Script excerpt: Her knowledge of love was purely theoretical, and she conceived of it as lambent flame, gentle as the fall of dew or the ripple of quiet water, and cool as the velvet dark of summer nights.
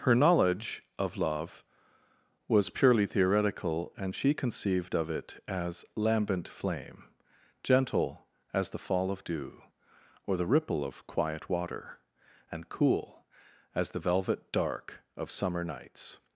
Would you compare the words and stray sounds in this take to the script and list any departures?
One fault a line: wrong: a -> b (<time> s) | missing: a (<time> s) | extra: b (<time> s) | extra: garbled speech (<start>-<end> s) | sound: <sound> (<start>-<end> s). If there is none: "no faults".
no faults